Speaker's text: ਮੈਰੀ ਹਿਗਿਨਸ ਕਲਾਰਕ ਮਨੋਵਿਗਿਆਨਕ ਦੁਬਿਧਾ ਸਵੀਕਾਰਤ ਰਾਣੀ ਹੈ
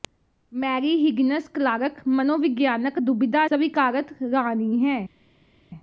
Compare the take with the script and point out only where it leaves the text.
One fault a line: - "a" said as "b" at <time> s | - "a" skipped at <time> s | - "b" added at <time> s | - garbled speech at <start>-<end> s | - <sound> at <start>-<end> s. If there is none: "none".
none